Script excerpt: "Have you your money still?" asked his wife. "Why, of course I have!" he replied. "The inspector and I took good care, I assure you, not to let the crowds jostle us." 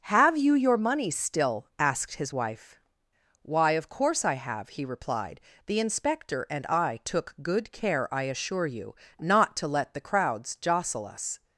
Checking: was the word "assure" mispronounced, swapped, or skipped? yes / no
no